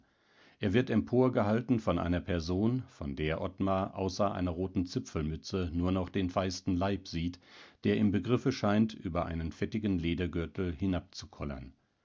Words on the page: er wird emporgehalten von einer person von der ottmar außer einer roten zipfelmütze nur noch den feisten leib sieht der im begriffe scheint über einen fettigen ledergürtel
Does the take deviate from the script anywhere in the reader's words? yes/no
no